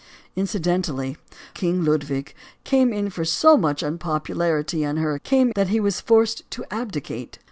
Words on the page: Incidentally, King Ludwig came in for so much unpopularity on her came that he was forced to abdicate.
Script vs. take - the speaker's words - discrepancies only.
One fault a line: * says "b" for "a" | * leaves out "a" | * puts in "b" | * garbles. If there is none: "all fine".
all fine